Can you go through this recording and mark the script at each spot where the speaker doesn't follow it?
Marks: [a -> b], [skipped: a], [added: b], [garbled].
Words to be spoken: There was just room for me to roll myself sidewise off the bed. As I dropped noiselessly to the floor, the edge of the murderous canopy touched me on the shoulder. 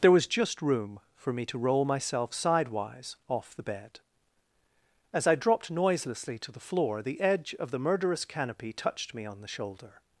There was just room for me to roll myself sidewise off the bed. As I dropped noiselessly to the floor, the edge of the murderous canopy touched me on the shoulder.